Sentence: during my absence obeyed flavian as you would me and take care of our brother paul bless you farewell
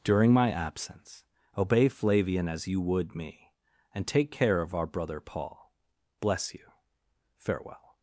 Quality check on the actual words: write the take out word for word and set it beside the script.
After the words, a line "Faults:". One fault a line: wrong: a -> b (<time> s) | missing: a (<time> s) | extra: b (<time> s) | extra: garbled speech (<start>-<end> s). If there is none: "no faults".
during my absence obey flavian as you would me and take care of our brother paul bless you farewell
Faults:
wrong: obeyed -> obey (1.6 s)